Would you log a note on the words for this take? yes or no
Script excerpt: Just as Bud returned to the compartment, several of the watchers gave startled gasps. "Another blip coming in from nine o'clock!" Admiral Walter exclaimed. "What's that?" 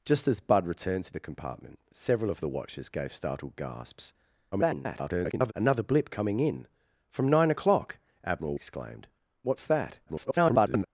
yes